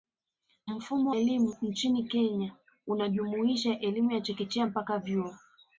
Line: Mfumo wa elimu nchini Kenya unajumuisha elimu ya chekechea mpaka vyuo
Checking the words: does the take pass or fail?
fail